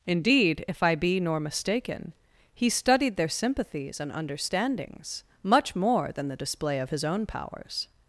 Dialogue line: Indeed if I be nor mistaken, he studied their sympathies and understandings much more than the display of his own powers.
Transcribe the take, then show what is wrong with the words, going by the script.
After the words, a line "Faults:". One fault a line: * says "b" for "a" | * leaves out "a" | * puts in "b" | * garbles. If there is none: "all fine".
Indeed if I be nor mistaken, he studied their sympathies and understandings much more than the display of his own powers.
Faults:
all fine